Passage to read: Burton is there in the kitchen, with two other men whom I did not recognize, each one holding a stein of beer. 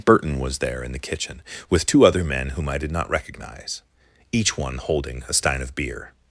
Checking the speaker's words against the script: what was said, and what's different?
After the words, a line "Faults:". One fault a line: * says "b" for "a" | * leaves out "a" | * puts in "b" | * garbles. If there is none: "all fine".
Burton was there in the kitchen, with two other men whom I did not recognize, each one holding a stein of beer.
Faults:
* says "was" for "is"